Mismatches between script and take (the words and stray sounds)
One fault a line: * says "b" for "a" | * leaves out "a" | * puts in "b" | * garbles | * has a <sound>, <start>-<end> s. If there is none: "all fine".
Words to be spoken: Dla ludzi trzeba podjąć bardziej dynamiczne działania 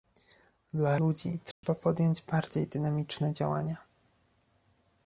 * has a dropout, 1.5-1.6 s